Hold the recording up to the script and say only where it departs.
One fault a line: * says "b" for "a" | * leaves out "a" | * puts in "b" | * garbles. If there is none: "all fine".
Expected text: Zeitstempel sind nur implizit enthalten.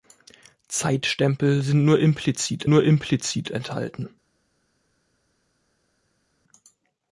* puts in "nur implizit"